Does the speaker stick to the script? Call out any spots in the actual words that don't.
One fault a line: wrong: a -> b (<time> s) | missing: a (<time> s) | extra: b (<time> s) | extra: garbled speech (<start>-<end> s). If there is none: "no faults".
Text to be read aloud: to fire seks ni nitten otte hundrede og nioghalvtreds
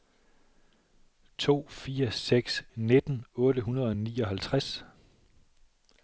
missing: ni (2.6 s)